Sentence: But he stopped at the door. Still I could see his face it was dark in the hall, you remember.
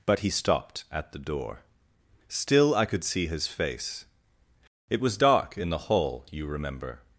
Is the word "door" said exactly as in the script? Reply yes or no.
yes